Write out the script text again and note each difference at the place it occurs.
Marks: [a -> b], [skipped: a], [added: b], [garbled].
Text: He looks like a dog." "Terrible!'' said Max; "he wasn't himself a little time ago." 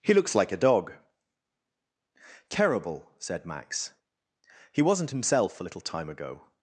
He looks like a dog." "Terrible!'' said Max; "he wasn't himself a little time ago."